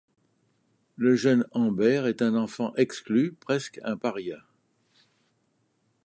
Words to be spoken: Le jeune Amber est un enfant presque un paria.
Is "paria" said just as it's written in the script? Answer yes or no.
yes